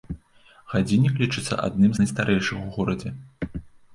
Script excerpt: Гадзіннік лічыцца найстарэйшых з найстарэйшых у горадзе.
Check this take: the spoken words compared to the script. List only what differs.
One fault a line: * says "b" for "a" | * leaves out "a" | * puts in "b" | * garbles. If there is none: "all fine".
* says "адным" for "найстарэйшых"